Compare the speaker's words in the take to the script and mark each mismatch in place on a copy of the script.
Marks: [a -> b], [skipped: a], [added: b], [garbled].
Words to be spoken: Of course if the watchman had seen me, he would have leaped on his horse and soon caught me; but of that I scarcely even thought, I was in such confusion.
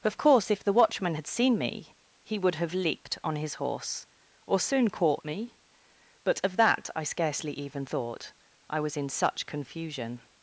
Of course if the watchman had seen me, he would have leaped on his horse [and -> or] soon caught me; but of that I scarcely even thought, I was in such confusion.